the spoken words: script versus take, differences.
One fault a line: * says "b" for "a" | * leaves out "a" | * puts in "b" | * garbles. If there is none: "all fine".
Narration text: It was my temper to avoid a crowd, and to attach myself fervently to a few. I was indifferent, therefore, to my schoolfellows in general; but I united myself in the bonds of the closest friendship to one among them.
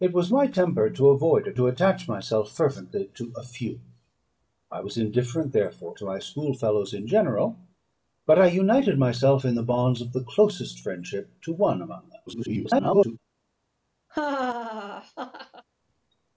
* leaves out "crowd and"
* garbles